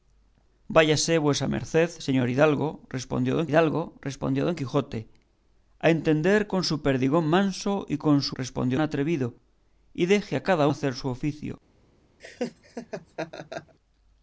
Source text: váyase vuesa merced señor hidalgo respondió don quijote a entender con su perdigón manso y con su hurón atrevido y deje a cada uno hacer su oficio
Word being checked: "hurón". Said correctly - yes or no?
no